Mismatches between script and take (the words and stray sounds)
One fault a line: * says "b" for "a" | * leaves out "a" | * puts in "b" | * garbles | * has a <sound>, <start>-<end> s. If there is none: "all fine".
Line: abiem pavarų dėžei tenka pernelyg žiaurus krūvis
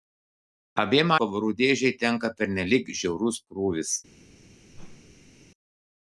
* has a whoosh, 4.7-5.4 s